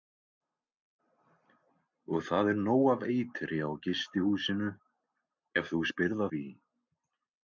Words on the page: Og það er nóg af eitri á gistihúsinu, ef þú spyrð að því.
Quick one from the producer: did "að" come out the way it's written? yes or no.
no